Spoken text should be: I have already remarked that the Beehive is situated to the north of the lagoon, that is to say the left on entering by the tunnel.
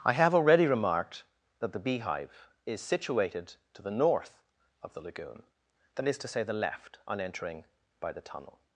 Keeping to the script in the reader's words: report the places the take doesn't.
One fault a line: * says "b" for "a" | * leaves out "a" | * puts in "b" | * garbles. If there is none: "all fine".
all fine